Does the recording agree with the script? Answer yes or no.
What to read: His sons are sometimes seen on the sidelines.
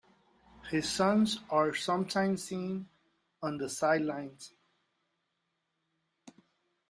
yes